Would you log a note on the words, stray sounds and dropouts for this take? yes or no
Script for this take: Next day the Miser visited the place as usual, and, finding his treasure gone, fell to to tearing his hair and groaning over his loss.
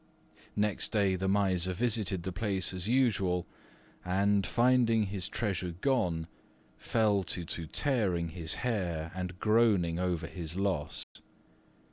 yes